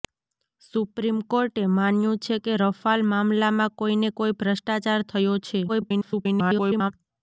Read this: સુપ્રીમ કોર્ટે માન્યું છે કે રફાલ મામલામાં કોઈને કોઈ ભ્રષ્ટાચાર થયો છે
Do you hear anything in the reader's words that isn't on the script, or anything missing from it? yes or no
yes